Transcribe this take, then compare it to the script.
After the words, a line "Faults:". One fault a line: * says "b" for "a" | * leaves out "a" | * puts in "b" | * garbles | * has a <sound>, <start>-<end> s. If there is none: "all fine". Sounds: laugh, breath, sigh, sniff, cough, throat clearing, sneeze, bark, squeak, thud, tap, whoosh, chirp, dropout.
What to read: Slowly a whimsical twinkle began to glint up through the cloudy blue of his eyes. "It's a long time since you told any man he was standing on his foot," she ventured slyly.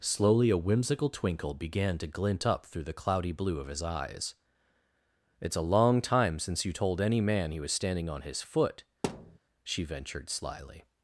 Slowly a whimsical twinkle began to glint up through the cloudy blue of his eyes. "It's a long time since you told any man he was standing on his foot," she ventured slyly.
Faults:
* has a thud, 9.0-9.4 s